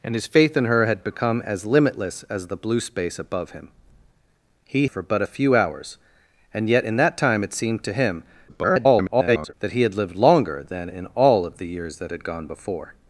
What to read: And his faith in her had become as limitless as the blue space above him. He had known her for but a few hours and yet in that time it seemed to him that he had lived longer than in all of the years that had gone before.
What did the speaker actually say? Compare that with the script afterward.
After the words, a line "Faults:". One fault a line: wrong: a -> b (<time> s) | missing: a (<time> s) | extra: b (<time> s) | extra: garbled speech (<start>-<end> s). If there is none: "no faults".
And his faith in her had become as limitless as the blue space above him. He for but a few hours and yet in that time it seemed to him [garbled] that he had lived longer than in all of the years that had gone before.
Faults:
missing: had known her (4.9 s)
extra: garbled speech (8.5-9.5 s)